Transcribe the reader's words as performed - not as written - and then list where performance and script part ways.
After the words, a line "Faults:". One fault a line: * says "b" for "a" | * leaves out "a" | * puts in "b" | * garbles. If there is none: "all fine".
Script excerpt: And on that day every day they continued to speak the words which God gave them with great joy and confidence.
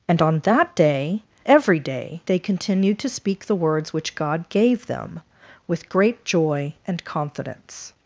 And on that day every day they continued to speak the words which God gave them with great joy and confidence.
Faults:
all fine